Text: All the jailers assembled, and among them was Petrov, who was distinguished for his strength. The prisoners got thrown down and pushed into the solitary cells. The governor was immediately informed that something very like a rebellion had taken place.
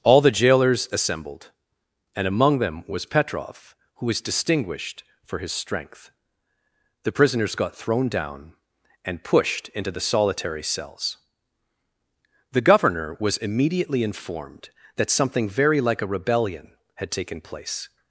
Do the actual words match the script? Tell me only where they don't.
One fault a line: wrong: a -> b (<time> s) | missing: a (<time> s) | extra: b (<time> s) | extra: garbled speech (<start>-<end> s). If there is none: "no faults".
no faults